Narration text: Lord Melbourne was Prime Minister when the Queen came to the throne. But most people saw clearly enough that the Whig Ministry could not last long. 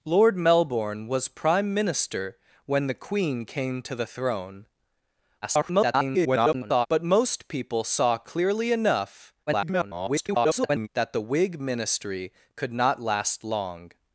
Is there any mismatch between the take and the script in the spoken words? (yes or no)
yes